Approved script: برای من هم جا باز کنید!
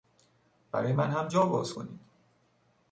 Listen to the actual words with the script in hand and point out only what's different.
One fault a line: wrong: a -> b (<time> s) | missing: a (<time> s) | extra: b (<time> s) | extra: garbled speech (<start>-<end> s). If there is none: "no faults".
no faults